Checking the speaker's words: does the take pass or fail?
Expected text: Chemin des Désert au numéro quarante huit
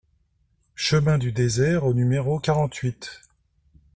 fail